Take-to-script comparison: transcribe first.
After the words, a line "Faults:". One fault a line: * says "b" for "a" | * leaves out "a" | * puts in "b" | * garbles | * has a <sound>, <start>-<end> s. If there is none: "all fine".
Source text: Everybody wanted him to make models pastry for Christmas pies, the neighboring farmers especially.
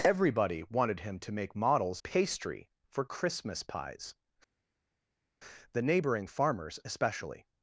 Everybody wanted him to make models pastry for Christmas pies, the neighboring farmers especially.
Faults:
all fine